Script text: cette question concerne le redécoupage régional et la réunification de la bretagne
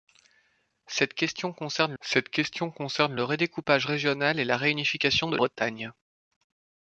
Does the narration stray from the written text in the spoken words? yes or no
yes